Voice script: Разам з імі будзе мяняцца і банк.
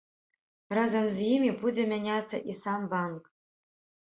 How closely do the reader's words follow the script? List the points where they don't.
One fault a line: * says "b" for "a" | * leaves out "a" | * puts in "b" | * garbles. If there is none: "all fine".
* puts in "сам"